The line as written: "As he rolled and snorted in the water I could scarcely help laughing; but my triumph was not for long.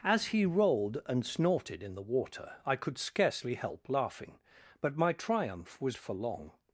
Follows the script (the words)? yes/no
no